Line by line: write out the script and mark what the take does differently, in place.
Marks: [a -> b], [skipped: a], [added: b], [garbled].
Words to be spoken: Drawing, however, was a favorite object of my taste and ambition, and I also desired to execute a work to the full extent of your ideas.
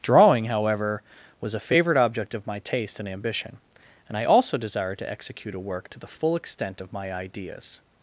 Drawing, however, was a favorite object of my taste and ambition, and I also desired to execute a work to the full extent of [your -> my] ideas.